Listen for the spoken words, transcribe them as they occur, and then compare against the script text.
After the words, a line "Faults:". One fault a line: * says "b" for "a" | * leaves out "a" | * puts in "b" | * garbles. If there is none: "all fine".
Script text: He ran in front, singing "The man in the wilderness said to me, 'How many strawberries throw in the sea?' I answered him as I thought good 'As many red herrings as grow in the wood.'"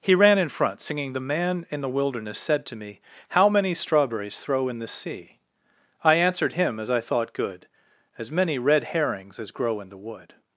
He ran in front, singing "The man in the wilderness said to me, 'How many strawberries throw in the sea?' I answered him as I thought good 'As many red herrings as grow in the wood.'"
Faults:
all fine